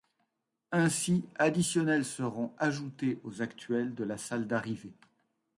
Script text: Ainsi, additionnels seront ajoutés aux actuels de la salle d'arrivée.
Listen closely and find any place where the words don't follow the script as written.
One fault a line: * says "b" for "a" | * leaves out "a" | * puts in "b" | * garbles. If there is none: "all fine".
all fine